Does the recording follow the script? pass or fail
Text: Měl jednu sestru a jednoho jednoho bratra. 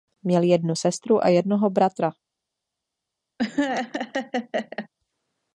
fail